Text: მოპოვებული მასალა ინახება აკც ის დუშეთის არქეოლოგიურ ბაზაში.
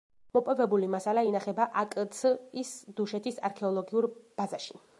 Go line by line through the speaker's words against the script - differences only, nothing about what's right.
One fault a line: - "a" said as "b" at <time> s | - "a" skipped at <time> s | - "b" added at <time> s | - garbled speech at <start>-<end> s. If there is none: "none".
none